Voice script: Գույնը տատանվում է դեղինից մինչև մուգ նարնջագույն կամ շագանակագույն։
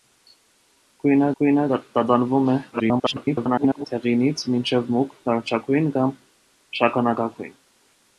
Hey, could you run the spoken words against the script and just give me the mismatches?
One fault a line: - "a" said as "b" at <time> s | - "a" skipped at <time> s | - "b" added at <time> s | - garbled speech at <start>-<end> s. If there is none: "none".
- "գույնը" added at 1.4 s
- garbled speech at 2.7-3.9 s